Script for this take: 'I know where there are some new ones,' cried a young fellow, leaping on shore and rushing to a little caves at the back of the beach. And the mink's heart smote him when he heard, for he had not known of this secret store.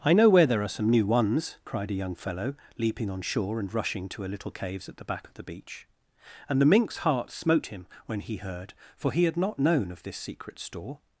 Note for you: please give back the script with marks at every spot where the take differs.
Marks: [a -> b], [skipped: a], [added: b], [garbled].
'I know where there are some new ones,' cried a young fellow, leaping on shore and rushing to a little caves at the back of the beach. And the mink's heart smote him when he heard, for he had not known of this secret store.